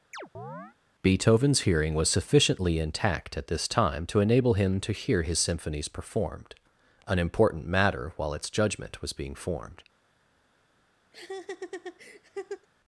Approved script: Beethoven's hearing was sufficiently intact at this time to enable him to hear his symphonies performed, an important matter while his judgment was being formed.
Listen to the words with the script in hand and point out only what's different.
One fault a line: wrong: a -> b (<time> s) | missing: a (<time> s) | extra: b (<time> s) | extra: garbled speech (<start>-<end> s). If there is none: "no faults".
wrong: his -> its (8.3 s)